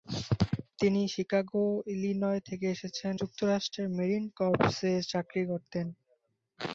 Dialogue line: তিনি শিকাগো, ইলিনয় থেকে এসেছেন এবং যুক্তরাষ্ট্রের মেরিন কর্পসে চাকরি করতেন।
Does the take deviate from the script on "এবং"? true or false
true